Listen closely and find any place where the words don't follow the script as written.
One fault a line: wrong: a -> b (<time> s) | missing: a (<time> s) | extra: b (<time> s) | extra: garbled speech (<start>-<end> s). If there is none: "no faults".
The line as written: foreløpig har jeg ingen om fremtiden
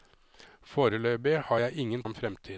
no faults